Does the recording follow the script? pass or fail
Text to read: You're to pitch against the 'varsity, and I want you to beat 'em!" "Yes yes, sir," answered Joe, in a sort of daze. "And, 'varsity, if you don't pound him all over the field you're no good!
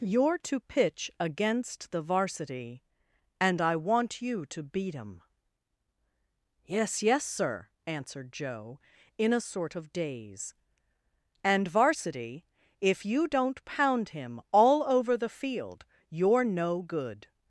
pass